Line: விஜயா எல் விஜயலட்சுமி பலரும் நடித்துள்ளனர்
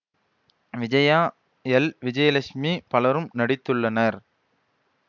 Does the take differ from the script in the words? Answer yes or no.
no